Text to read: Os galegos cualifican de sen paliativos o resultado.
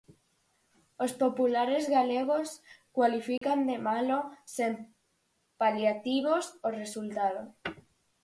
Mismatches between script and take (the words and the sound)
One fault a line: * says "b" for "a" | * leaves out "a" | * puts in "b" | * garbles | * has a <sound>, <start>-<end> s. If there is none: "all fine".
* puts in "populares"
* has a dropout, 3.4-3.4 s
* puts in "malo"